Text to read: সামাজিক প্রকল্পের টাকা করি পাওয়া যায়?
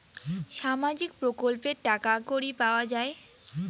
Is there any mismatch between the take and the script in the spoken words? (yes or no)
no